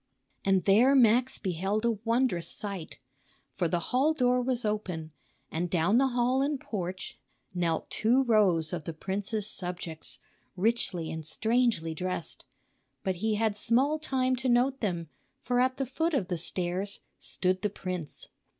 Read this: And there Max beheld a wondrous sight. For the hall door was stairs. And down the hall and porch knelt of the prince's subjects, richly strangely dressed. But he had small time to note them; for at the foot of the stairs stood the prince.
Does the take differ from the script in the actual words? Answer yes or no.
yes